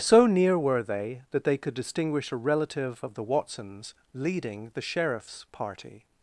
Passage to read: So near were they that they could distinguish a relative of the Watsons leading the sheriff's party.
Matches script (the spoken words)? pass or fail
pass